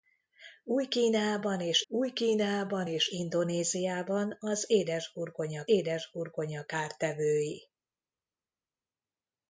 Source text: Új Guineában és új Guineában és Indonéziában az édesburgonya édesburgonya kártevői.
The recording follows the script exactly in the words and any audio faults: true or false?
true